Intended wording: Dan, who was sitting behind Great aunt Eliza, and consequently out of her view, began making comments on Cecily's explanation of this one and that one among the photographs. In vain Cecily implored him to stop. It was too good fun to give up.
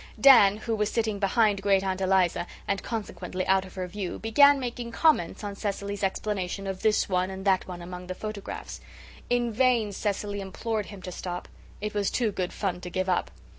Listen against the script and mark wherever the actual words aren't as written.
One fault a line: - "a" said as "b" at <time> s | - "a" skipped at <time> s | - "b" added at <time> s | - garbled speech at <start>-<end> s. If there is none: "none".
none